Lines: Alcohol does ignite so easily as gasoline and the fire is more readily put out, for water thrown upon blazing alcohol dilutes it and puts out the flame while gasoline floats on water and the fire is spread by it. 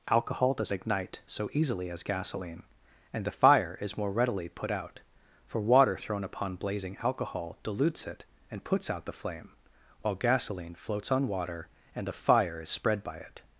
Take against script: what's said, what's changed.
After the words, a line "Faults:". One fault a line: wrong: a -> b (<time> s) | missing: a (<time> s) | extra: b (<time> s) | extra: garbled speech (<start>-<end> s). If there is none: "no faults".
Alcohol does ignite so easily as gasoline and the fire is more readily put out, for water thrown upon blazing alcohol dilutes it and puts out the flame while gasoline floats on water and the fire is spread by it.
Faults:
no faults